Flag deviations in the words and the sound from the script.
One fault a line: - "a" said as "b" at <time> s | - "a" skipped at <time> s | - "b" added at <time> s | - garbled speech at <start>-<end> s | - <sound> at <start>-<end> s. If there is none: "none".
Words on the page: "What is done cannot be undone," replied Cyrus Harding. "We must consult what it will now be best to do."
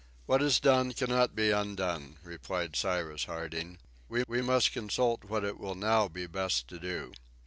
- "we" added at 4.3 s